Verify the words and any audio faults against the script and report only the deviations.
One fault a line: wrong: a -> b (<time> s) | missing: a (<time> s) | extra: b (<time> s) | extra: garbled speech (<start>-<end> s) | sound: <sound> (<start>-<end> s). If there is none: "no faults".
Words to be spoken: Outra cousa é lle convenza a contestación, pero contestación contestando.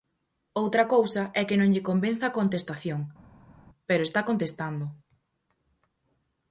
extra: que non (1.5 s)
wrong: contestación -> está (4.0 s)